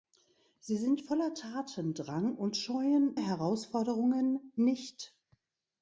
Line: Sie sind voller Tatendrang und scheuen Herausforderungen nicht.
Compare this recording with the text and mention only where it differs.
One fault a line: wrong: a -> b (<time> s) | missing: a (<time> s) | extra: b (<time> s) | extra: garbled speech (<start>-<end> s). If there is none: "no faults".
no faults